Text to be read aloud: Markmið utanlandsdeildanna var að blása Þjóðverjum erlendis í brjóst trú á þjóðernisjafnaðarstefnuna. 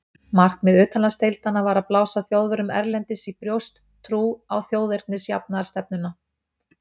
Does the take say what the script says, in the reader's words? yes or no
yes